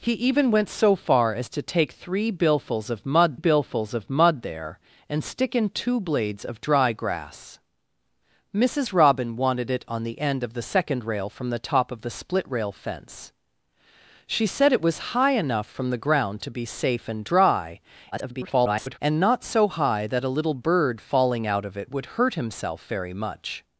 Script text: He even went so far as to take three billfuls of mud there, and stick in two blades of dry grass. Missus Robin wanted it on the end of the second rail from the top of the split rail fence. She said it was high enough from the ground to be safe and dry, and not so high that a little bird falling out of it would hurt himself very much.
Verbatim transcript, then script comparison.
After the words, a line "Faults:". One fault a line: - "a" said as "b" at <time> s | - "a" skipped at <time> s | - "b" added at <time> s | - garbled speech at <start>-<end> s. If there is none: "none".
He even went so far as to take three billfuls of mud billfuls of mud there, and stick in two blades of dry grass. Missus Robin wanted it on the end of the second rail from the top of the split rail fence. She said it was high enough from the ground to be safe and dry, [garbled] and not so high that a little bird falling out of it would hurt himself very much.
Faults:
- "billfuls of mud" added at 3.3 s
- garbled speech at 18.1-19.0 s